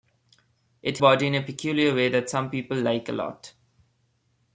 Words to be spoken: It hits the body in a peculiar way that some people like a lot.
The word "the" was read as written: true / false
false